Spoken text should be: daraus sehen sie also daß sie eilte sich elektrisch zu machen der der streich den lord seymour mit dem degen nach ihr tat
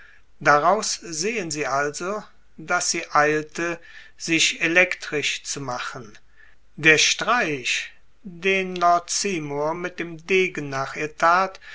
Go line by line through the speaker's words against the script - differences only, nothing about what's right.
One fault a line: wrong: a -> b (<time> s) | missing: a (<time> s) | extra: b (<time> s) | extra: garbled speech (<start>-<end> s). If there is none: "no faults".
missing: der (7.0 s)